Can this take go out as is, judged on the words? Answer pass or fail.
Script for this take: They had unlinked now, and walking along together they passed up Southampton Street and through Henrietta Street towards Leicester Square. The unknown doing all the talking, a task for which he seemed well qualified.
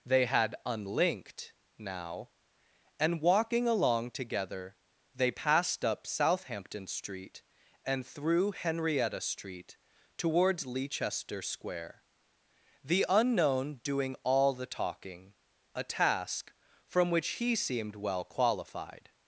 fail